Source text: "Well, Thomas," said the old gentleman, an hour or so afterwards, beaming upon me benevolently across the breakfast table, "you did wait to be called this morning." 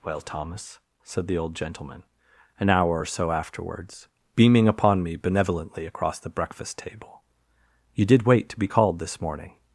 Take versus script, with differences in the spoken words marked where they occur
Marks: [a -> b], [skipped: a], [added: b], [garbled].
"Well, Thomas," said the old gentleman, an hour or so afterwards, beaming upon me benevolently across the breakfast table, "you did wait to be called this morning."